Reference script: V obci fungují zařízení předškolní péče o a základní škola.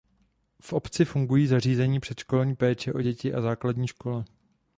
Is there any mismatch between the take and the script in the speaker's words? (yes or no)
yes